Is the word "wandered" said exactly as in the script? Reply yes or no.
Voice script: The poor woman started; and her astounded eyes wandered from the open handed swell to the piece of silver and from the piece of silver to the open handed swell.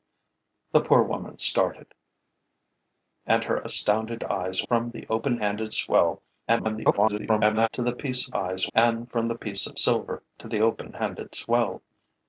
no